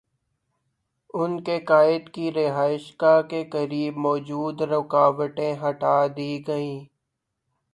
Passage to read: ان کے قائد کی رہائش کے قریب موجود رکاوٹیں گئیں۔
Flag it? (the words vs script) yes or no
yes